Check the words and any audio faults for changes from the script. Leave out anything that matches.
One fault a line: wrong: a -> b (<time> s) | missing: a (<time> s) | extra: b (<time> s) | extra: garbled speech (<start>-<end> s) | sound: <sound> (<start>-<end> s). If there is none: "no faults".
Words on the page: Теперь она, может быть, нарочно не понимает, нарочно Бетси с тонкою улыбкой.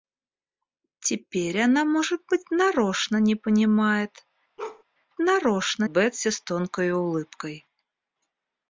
sound: bark (4.6-4.8 s)